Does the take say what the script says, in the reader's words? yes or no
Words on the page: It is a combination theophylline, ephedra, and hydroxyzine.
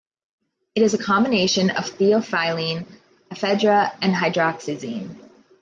no